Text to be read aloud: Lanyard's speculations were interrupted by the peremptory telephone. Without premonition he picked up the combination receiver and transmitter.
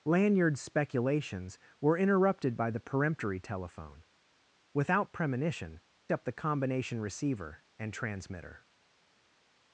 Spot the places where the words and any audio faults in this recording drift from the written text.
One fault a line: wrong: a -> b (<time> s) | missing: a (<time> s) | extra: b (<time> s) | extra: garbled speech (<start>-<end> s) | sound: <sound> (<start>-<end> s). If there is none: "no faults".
missing: he picked (5.8 s)